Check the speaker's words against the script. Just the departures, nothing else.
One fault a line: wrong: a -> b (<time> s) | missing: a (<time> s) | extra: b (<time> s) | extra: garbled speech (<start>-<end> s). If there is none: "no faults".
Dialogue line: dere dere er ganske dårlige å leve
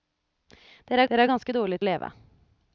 no faults